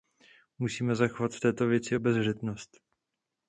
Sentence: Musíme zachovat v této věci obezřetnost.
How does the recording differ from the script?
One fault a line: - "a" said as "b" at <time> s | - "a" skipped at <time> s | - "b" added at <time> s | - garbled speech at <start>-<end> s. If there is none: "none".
none